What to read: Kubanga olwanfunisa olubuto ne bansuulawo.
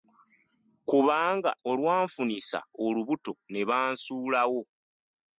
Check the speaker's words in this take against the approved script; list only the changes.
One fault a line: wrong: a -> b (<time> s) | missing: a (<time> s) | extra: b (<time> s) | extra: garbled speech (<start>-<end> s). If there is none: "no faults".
no faults